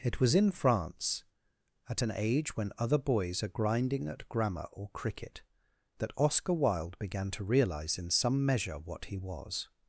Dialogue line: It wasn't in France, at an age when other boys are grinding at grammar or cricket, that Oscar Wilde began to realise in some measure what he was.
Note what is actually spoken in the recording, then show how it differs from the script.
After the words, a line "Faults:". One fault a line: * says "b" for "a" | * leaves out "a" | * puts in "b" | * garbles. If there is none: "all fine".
It was in France, at an age when other boys are grinding at grammar or cricket, that Oscar Wilde began to realise in some measure what he was.
Faults:
* says "was" for "wasn't"